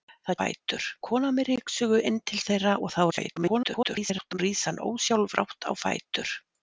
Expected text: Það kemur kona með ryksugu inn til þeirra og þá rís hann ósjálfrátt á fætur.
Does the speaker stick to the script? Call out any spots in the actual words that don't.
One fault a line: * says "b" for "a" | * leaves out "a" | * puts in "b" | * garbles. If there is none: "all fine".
* says "fætur" for "kemur"
* garbles